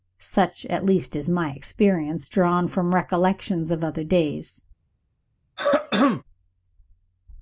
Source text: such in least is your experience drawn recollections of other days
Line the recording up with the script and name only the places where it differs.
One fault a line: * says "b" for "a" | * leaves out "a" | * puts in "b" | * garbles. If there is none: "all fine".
* says "at" for "in"
* says "my" for "your"
* puts in "from"